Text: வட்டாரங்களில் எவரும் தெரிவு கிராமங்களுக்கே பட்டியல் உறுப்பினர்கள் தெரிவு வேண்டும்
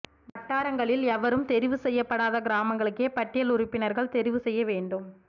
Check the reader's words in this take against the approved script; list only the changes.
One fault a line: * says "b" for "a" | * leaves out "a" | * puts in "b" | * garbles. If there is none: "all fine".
* puts in "செய்யப்படாத"
* puts in "செய்ய"